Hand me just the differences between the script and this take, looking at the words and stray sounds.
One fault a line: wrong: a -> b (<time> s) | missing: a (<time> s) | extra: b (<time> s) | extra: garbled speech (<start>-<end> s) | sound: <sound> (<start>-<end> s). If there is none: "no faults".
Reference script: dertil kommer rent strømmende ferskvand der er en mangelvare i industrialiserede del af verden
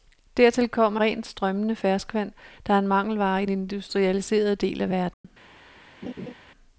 sound: dropout (5.1-5.2 s)
sound: laugh (6.0-6.3 s)